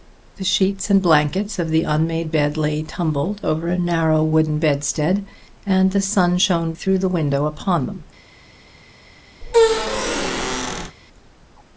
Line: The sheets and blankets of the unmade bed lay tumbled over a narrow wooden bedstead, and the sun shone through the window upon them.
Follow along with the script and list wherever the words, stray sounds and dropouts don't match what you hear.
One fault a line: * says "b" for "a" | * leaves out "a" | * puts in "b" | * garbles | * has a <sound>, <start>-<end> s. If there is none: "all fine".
* has a squeak, 9.4-11.0 s